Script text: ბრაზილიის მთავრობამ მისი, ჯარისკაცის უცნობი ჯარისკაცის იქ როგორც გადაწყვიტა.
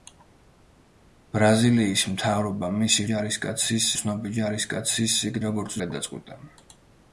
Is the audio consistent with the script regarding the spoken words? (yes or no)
yes